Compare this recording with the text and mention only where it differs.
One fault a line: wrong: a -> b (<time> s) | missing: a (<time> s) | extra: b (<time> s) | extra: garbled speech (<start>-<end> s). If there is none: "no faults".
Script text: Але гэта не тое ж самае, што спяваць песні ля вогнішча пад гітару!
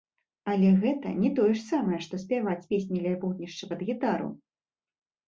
no faults